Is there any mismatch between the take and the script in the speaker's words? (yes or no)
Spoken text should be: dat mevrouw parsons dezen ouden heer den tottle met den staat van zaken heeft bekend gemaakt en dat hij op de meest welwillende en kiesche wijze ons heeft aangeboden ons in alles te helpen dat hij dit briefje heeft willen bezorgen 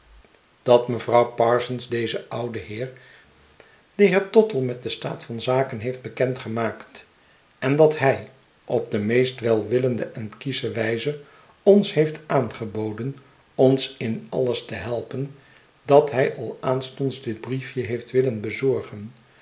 yes